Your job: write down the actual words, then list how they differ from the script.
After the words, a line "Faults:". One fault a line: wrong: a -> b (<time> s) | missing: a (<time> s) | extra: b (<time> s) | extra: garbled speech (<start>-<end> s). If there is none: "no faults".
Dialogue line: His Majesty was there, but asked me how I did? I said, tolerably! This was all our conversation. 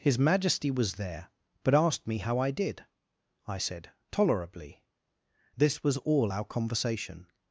His Majesty was there, but asked me how I did? I said, tolerably! This was all our conversation.
Faults:
no faults